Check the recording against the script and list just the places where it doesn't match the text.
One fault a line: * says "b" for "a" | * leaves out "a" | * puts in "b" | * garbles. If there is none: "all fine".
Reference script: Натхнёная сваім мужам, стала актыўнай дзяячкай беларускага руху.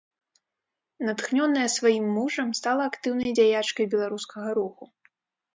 all fine